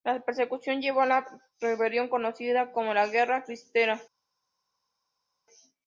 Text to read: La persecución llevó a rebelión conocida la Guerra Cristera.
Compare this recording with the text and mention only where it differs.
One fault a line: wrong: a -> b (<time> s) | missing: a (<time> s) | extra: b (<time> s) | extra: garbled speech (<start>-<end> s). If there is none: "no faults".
extra: la (1.1 s)
extra: como (2.7 s)